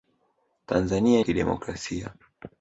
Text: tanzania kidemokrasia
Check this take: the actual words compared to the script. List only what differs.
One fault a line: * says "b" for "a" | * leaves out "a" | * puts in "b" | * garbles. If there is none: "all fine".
all fine